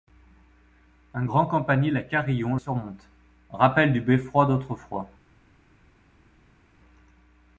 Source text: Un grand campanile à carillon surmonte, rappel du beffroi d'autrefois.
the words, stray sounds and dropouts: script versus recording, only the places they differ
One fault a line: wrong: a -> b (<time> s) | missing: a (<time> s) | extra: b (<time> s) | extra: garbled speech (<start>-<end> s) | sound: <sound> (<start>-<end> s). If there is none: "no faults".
no faults